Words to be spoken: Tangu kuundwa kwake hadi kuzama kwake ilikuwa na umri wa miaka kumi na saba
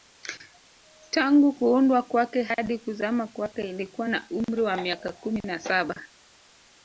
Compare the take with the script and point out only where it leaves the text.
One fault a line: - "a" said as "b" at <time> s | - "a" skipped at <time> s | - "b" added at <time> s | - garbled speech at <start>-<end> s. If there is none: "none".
none